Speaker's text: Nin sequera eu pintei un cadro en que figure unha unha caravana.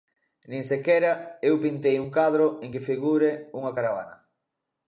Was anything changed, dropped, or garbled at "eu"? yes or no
no